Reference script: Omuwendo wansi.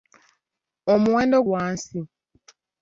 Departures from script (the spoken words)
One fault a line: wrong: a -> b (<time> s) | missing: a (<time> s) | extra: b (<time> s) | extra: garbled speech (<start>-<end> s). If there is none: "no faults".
no faults